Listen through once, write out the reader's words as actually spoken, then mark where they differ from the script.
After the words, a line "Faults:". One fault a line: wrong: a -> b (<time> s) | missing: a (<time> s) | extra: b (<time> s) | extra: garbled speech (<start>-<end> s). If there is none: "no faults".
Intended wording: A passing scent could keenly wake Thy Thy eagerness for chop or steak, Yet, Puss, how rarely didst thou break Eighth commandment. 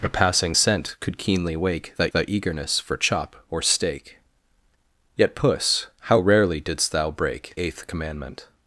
A passing scent could keenly wake Thy Thy eagerness for chop or steak, Yet, Puss, how rarely didst thou break Eighth commandment.
Faults:
no faults